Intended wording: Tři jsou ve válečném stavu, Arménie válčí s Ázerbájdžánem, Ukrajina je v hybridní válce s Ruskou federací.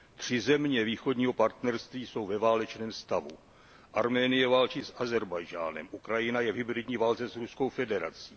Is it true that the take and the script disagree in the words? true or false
true